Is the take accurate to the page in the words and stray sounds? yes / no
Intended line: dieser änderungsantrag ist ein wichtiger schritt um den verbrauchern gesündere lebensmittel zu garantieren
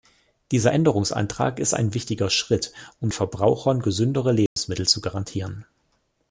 no